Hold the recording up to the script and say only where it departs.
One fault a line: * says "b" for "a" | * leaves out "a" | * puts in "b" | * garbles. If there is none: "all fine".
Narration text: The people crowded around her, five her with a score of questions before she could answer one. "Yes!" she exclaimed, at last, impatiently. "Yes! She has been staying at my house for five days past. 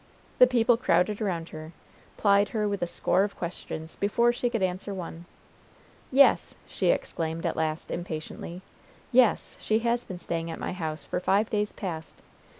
* says "plied" for "five"